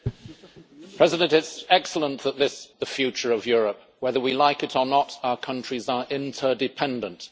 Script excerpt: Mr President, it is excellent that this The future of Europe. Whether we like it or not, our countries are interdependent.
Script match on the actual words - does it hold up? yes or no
yes